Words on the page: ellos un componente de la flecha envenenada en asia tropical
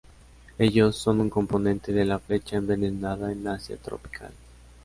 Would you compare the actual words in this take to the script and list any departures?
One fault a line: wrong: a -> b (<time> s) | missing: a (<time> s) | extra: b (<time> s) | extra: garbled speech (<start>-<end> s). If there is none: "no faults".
extra: son (0.9 s)